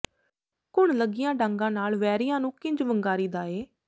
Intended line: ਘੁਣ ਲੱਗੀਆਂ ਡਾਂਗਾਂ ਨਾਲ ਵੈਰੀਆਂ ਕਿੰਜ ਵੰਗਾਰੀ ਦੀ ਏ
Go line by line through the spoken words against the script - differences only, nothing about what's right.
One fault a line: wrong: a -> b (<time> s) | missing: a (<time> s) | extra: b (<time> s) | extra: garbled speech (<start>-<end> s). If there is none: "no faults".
extra: ਨੂੰ (2.4 s)
wrong: ਦੀ -> ਦਾ (3.3 s)